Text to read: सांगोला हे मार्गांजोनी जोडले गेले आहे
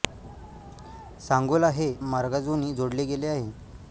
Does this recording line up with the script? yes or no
yes